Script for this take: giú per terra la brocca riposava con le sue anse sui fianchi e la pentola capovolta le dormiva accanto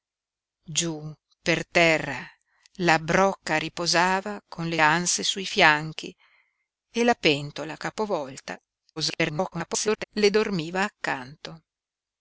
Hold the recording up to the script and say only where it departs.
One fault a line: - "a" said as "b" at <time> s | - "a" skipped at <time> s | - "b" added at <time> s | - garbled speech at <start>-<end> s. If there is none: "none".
- "sue" skipped at 4.8 s
- garbled speech at 9.0-10.0 s